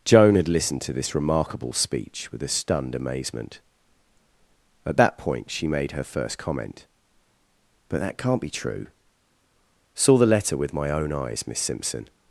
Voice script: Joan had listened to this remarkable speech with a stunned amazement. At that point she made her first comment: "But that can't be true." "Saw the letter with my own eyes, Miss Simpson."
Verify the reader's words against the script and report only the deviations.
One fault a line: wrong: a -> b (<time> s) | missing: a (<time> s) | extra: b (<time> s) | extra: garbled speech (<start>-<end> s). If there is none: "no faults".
no faults